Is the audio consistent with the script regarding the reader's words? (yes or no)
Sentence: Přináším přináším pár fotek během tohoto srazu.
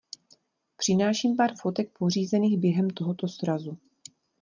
no